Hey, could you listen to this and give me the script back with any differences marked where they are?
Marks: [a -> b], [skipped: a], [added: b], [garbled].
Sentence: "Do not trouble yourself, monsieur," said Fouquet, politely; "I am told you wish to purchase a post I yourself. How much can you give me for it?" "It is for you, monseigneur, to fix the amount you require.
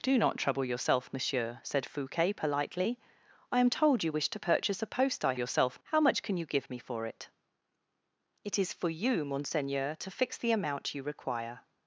"Do not trouble yourself, monsieur," said Fouquet, politely; "I am told you wish to purchase a post I yourself. How much can you give me for it?" "It is for you, monseigneur, to fix the amount you require.